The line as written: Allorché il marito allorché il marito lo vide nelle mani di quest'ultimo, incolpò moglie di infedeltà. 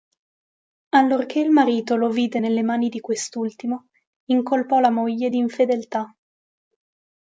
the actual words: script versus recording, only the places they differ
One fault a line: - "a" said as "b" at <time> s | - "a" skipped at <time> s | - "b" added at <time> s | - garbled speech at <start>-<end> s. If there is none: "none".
- "allorché il marito" skipped at 1.9 s
- "la" added at 4.8 s